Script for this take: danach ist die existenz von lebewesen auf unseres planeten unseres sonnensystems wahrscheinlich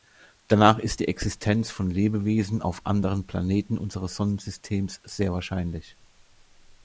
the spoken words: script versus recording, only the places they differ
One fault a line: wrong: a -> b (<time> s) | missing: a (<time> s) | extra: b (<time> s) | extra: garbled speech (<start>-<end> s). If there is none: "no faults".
wrong: unseres -> anderen (2.9 s)
extra: sehr (5.0 s)